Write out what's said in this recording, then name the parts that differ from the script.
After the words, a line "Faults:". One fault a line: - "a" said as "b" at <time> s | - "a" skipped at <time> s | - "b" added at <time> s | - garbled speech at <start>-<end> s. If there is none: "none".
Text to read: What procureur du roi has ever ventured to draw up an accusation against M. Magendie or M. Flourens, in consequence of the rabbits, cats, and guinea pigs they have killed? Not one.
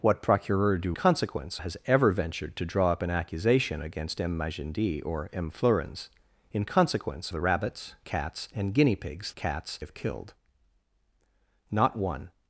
What procureur du consequence has ever ventured to draw up an accusation against M. Magendie or M. Flourens, in consequence the rabbits, cats, and guinea pigs cats have killed? Not one.
Faults:
- "roi" said as "consequence" at 0.9 s
- "of" skipped at 7.3 s
- "they" said as "cats" at 9.4 s